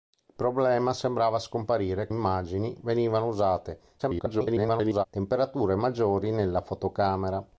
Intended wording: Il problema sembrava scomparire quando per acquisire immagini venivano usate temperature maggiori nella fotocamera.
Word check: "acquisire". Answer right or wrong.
wrong